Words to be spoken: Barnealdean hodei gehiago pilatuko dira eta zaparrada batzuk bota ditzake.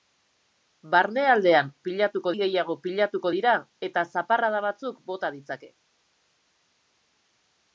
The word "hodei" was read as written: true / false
false